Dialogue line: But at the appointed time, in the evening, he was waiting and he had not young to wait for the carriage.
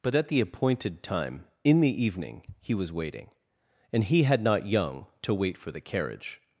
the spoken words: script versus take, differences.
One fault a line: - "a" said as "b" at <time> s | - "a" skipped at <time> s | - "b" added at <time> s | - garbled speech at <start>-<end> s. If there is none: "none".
none